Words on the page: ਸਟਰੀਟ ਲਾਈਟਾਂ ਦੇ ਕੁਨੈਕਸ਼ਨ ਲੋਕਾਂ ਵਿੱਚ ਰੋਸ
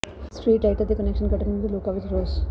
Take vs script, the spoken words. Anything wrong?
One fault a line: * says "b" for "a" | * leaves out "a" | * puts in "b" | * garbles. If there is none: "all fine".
* puts in "ਕੱਟਣ ਵਿਰੁੱਧ"